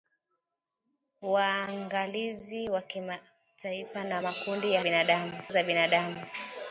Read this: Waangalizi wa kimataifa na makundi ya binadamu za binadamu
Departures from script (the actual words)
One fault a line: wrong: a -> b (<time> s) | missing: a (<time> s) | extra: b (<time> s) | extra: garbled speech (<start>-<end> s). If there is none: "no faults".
no faults